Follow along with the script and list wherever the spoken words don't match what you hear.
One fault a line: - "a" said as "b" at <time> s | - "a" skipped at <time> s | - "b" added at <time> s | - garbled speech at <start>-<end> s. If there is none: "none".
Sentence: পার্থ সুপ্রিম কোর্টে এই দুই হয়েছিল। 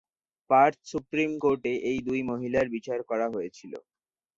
- "মহিলার বিচার করা" added at 2.3 s